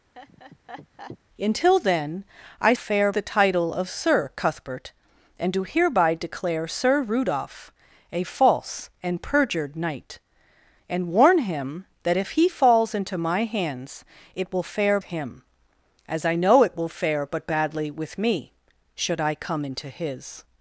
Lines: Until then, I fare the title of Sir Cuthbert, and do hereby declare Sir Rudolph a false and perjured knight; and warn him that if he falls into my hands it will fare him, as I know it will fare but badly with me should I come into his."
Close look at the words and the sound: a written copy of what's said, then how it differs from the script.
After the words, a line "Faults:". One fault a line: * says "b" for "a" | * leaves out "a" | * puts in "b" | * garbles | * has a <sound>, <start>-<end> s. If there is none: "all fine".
Until then, I fare the title of Sir Cuthbert, and do hereby declare Sir Rudolph a false and perjured knight; and warn him that if he falls into my hands it will fare him, as I know it will fare but badly with me should I come into his."
Faults:
* has a laugh, 0.1-1.2 s